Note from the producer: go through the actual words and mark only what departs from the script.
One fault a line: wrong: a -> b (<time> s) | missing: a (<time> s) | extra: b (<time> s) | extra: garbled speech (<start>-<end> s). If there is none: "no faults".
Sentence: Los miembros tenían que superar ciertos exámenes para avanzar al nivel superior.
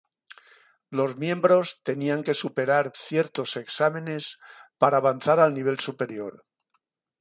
no faults